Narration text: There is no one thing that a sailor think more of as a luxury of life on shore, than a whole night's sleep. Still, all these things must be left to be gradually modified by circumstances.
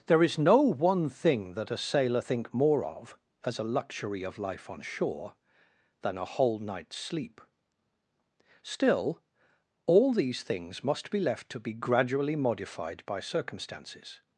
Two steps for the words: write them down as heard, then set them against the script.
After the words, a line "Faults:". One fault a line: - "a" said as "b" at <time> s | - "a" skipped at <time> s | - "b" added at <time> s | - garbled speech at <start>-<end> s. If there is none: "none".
There is no one thing that a sailor think more of as a luxury of life on shore, than a whole night's sleep. Still, all these things must be left to be gradually modified by circumstances.
Faults:
none